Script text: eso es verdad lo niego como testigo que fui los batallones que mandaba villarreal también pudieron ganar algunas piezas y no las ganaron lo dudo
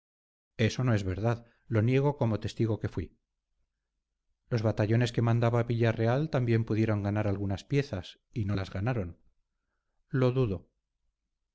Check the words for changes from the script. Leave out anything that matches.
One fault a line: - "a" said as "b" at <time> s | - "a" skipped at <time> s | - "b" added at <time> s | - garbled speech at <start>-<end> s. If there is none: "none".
- "no" added at 0.8 s